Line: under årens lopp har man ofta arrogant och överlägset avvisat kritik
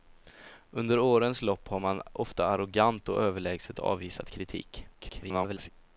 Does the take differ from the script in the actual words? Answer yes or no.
yes